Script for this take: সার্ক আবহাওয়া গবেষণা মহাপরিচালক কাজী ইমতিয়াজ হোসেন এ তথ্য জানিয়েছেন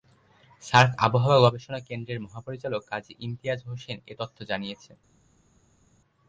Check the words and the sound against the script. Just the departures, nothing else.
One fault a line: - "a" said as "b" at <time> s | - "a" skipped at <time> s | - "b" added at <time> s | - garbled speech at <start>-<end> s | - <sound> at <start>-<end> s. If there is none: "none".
- "কেন্দ্রের" added at 1.9 s